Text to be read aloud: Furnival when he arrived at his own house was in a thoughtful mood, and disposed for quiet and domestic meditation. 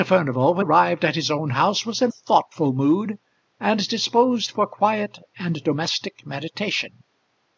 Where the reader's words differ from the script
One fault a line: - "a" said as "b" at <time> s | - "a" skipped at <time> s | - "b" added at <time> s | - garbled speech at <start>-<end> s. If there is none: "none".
- "he" skipped at 0.7 s
- "a" skipped at 2.1 s